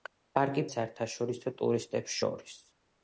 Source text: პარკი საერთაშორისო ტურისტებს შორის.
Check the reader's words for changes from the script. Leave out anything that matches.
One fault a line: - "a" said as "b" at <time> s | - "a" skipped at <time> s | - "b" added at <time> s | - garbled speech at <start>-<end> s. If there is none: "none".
none